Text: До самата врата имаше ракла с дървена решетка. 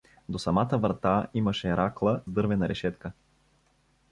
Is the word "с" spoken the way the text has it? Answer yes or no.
no